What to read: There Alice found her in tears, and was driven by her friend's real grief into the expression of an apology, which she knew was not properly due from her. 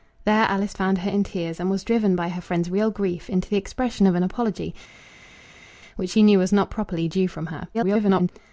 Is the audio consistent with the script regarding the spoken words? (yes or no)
no